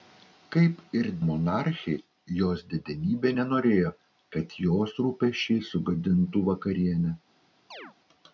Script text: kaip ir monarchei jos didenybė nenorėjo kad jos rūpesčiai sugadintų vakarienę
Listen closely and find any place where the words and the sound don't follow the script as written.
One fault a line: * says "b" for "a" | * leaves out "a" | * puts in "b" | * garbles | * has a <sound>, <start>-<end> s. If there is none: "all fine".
* has a chirp, 7.7-8.0 s